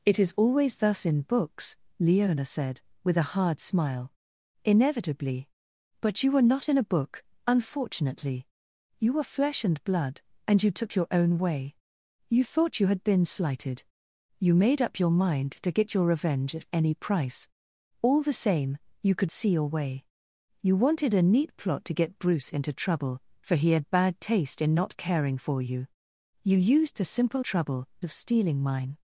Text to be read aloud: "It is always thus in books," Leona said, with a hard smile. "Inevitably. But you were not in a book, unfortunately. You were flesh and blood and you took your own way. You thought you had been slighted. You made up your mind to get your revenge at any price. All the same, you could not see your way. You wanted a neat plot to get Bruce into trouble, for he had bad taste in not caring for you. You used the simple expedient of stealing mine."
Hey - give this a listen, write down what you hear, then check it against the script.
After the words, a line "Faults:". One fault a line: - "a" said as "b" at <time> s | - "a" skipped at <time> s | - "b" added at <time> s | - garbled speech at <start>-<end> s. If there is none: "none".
"It is always thus in books," Leona said, with a hard smile. "Inevitably. But you were not in a book, unfortunately. You were flesh and blood and you took your own way. You thought you had been slighted. You made up your mind to get your revenge at any price. All the same, you could see your way. You wanted a neat plot to get Bruce into trouble, for he had bad taste in not caring for you. You used the simple trouble of stealing mine."
Faults:
- "not" skipped at 19.3 s
- "expedient" said as "trouble" at 27.4 s